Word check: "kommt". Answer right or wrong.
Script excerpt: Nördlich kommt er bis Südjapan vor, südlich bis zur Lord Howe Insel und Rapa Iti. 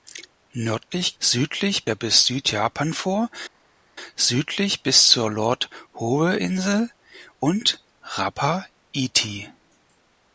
wrong